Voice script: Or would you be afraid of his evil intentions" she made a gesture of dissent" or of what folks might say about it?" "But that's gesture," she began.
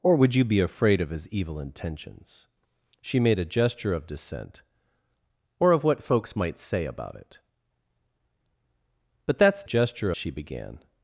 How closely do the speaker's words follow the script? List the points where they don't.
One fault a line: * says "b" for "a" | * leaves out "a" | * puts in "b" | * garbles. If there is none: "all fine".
all fine